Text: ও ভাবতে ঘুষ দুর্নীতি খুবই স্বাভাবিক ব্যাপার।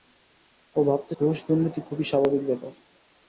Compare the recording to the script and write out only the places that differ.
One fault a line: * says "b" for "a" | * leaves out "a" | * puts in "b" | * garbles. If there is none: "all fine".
all fine